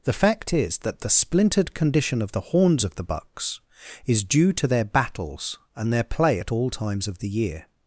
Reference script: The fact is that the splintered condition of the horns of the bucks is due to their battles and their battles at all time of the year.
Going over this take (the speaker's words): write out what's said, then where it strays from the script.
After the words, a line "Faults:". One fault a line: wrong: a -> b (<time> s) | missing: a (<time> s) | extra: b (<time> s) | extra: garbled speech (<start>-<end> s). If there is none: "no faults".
The fact is that the splintered condition of the horns of the bucks is due to their battles and their play at all times of the year.
Faults:
wrong: battles -> play (6.0 s)
wrong: time -> times (6.7 s)